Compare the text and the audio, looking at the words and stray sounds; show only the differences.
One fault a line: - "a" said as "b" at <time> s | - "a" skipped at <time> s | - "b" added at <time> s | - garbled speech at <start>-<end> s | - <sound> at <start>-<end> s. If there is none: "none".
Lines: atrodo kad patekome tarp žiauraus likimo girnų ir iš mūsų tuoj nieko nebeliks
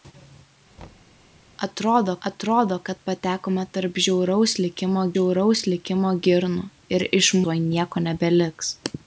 - thud at 0.8-1.2 s
- "atrodo" added at 2.3 s
- "žiauraus likimo" added at 5.1 s
- "mūsų" skipped at 7.3 s